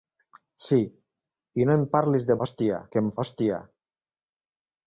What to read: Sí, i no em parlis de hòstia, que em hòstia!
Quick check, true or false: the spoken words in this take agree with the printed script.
true